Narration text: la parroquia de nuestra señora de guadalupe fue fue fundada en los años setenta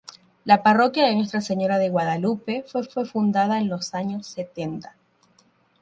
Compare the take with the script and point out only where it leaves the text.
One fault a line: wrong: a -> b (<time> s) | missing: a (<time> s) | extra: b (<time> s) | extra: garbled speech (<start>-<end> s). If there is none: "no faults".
no faults